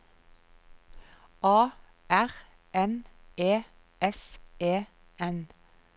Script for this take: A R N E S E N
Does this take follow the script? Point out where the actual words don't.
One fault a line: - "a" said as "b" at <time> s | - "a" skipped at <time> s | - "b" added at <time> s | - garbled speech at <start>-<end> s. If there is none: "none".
none